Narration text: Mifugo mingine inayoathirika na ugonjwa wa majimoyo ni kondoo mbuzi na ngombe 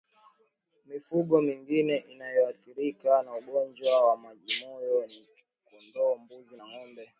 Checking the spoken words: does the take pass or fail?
pass